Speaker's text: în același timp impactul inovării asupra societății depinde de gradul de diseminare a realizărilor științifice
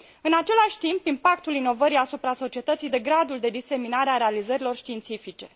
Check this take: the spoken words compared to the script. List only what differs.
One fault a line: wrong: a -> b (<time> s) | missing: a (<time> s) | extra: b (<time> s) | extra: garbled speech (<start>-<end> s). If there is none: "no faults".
missing: depinde (2.9 s)